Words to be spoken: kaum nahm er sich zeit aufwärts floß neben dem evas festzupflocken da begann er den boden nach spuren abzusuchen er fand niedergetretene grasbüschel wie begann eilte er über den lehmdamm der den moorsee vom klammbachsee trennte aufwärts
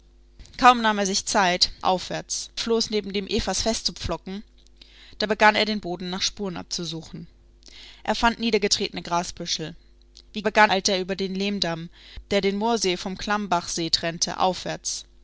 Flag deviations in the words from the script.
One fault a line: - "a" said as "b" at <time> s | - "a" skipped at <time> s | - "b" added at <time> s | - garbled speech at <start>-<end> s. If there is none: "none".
none